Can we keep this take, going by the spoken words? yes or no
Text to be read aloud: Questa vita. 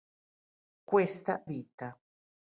yes